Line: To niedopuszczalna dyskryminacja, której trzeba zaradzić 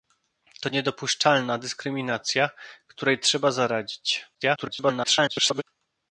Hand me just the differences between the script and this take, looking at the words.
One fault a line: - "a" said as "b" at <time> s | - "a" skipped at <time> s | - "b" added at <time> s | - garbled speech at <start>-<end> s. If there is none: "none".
- garbled speech at 4.3-5.6 s